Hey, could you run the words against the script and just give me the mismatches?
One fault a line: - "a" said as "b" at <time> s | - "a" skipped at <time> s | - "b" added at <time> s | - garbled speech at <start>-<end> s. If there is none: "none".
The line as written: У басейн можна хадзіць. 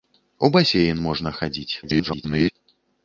- garbled speech at 1.8-2.5 s